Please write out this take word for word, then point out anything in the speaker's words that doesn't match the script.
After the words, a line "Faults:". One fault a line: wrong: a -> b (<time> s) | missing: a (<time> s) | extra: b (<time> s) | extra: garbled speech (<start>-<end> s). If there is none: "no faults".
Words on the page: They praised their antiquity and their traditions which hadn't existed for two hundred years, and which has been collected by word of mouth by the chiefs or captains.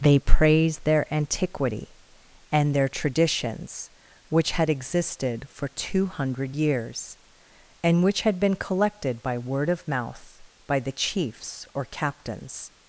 They praised their antiquity and their traditions which had existed for two hundred years, and which had been collected by word of mouth by the chiefs or captains.
Faults:
wrong: hadn't -> had (4.5 s)
wrong: has -> had (8.2 s)